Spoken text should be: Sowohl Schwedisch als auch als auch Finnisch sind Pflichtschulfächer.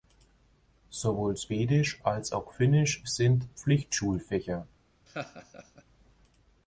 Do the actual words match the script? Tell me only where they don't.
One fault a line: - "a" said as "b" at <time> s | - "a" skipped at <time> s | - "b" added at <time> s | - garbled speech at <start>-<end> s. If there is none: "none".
- "als auch" skipped at 2.5 s